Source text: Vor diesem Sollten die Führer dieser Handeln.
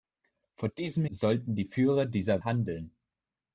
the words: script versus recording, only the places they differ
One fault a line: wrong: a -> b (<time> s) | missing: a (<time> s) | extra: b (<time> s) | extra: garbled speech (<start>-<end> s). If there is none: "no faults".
no faults